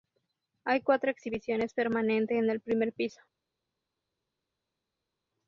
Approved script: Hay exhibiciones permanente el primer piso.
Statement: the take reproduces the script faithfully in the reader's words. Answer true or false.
false